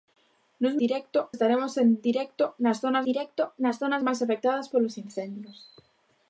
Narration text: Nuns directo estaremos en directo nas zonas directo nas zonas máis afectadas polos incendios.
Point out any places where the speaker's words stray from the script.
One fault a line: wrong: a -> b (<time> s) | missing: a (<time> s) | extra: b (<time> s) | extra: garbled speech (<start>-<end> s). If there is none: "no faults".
no faults